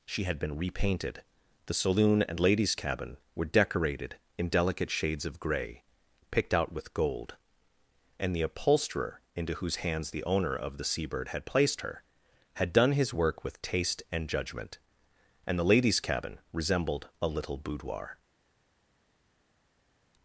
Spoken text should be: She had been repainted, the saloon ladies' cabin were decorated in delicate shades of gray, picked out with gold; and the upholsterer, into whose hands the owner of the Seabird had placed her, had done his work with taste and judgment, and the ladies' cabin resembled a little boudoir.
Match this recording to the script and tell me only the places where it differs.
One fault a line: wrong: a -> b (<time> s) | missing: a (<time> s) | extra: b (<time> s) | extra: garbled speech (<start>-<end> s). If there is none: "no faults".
extra: and (2.2 s)